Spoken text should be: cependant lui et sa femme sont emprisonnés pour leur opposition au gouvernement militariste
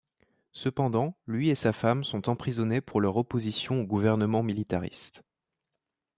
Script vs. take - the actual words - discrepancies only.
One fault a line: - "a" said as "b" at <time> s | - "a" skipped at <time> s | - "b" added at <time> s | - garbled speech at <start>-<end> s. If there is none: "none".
none